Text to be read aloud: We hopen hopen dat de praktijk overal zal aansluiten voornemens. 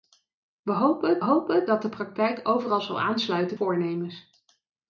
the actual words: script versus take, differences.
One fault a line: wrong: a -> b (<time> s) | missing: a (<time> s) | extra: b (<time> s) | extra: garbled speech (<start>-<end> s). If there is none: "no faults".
no faults